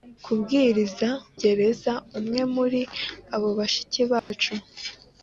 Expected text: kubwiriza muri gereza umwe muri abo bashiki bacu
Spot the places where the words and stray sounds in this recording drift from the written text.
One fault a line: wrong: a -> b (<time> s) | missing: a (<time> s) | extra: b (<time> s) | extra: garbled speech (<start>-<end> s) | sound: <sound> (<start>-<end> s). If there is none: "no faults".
missing: muri (1.1 s)
sound: dropout (4.2-4.3 s)